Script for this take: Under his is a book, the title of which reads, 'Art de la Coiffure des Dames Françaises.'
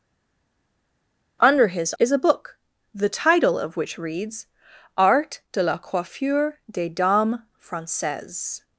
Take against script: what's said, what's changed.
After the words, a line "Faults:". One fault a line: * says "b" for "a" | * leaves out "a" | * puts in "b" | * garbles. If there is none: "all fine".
Under his is a book, the title of which reads, 'Art de la Coiffure des Dames Françaises.'
Faults:
all fine